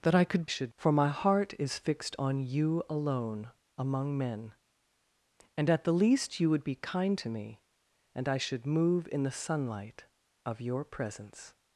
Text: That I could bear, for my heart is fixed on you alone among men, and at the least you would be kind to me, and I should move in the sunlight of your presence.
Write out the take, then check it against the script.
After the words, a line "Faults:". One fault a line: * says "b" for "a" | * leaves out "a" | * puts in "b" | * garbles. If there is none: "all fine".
That I could should, for my heart is fixed on you alone among men, and at the least you would be kind to me, and I should move in the sunlight of your presence.
Faults:
* says "should" for "bear"